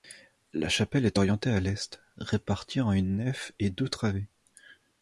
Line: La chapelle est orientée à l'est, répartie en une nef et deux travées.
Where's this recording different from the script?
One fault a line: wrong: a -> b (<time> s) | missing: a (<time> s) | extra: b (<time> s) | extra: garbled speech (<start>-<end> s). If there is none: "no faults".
no faults